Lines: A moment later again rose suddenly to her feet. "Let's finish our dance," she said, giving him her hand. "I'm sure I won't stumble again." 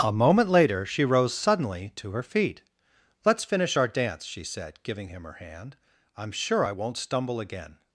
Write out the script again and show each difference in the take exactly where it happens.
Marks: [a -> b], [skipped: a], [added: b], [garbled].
A moment later [again -> she] rose suddenly to her feet. "Let's finish our dance," she said, giving him her hand. "I'm sure I won't stumble again."